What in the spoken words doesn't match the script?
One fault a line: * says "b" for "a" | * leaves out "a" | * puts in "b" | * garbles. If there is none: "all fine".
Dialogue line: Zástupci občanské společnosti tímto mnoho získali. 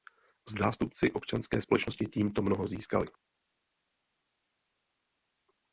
all fine